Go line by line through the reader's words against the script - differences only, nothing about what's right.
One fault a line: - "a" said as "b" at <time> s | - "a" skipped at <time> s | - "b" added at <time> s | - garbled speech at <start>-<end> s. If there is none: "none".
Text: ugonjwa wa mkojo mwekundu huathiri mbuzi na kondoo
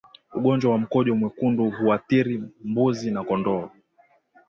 none